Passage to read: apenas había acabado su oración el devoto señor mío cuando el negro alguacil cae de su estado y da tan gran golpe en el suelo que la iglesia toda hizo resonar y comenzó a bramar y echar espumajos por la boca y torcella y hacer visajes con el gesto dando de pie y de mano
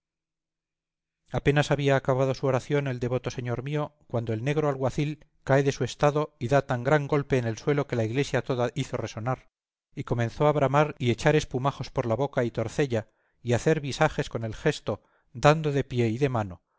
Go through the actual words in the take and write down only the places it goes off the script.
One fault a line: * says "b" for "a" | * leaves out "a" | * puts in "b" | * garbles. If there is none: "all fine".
all fine